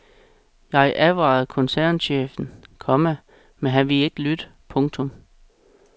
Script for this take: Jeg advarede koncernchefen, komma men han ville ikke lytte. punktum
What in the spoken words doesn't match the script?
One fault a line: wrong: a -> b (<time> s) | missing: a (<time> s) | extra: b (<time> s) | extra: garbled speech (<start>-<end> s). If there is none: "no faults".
no faults